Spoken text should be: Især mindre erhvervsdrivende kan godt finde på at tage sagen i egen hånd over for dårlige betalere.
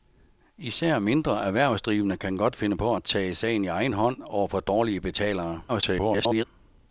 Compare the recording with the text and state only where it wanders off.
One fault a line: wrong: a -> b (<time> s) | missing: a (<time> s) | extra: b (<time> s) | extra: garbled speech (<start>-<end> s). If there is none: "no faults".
extra: garbled speech (5.7-6.4 s)